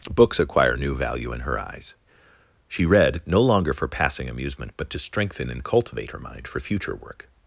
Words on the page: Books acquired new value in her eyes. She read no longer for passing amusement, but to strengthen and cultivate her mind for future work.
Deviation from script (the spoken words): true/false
true